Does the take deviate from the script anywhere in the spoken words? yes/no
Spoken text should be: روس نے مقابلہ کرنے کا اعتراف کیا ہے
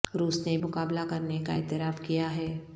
no